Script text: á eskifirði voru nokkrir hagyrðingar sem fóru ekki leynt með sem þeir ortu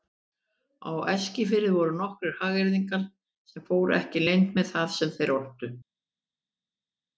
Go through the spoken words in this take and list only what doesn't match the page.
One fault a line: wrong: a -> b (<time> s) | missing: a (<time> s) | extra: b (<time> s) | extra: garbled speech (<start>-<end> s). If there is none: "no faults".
extra: það (4.8 s)